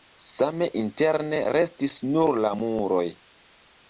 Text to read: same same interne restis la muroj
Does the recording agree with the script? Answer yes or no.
no